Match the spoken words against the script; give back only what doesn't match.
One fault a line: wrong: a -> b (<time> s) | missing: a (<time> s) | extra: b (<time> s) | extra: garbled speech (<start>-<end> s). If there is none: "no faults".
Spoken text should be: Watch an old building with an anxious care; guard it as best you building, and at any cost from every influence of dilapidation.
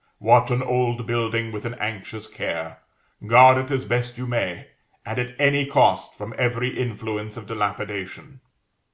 wrong: building -> may (4.3 s)